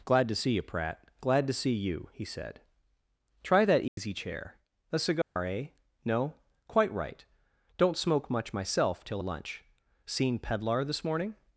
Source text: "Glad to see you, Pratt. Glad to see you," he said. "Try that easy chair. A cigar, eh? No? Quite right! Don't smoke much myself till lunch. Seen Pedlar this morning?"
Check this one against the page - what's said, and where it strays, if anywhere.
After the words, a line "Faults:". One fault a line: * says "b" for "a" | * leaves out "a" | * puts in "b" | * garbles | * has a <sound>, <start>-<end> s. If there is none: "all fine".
"Glad to see you, Pratt. Glad to see you," he said. "Try that easy chair. A cigar, eh? No? Quite right! Don't smoke much myself till lunch. Seen Pedlar this morning?"
Faults:
* has a dropout, 3.9-4.0 s
* has a dropout, 5.2-5.4 s